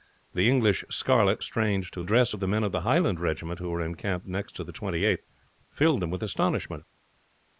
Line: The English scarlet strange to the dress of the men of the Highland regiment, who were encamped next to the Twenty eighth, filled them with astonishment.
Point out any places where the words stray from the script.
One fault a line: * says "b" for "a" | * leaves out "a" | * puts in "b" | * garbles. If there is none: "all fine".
all fine